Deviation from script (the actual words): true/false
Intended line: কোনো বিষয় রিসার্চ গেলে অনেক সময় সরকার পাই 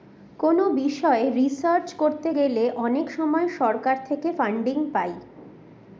true